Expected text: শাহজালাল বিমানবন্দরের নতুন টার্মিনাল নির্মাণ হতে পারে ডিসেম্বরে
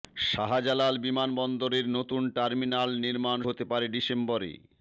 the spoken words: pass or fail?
pass